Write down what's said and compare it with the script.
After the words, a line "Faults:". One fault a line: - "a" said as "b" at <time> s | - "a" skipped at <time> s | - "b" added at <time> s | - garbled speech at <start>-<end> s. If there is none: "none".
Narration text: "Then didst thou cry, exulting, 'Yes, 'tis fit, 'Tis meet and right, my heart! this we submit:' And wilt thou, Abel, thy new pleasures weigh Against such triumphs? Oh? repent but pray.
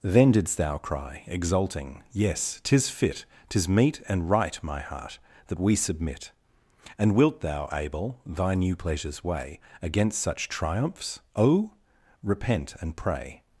"Then didst thou cry, exulting, 'Yes, 'tis fit, 'Tis meet and right, my heart! that we submit:' And wilt thou, Abel, thy new pleasures weigh Against such triumphs? Oh? repent and pray.
Faults:
- "this" said as "that" at 5.5 s
- "but" said as "and" at 12.8 s